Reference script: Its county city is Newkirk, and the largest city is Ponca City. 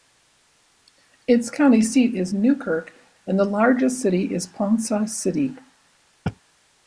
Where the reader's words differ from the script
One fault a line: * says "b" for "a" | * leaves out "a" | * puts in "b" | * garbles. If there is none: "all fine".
* says "seat" for "city"